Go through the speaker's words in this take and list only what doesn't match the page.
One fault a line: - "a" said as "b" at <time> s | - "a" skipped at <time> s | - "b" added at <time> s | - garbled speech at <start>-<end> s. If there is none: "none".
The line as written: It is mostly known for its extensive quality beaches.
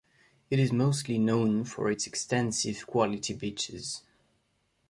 none